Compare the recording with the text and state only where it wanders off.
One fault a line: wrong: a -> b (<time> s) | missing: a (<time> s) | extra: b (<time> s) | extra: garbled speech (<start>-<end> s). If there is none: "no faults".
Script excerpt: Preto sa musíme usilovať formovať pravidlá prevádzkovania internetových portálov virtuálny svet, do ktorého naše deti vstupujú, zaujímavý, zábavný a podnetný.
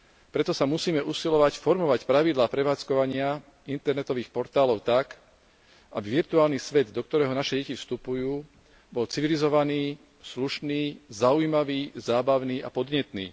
extra: tak aby (4.8 s)
extra: bol civilizovaný slušný (8.9 s)